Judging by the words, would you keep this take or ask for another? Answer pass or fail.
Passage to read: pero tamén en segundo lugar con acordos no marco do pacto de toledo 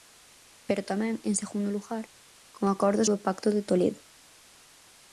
fail